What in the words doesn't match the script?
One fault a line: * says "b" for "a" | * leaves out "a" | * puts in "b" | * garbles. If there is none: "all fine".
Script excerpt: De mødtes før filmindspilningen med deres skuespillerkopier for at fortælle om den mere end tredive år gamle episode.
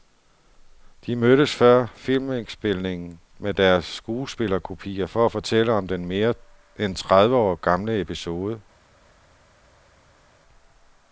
all fine